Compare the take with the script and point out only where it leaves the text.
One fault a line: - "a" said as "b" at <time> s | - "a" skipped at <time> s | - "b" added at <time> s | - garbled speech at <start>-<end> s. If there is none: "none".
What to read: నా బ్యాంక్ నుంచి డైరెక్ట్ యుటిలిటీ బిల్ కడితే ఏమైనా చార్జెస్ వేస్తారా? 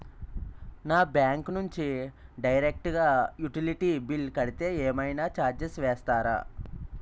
- "గా" added at 3.0 s